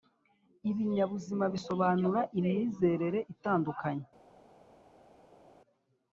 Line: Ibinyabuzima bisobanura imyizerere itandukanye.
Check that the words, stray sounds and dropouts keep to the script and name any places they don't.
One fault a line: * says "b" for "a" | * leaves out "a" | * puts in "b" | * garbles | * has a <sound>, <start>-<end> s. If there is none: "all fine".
all fine